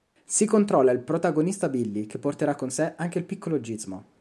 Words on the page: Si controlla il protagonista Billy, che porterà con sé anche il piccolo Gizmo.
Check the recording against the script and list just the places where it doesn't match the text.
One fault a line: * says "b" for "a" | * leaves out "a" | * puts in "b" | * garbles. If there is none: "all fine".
all fine